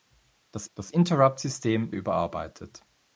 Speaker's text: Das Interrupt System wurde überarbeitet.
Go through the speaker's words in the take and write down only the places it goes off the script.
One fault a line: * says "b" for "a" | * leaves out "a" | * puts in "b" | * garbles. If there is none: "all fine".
* puts in "das"
* leaves out "wurde"